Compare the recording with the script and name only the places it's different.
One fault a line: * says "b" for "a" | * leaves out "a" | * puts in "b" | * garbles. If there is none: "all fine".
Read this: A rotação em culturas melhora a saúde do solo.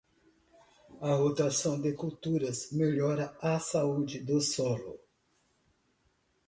* says "de" for "em"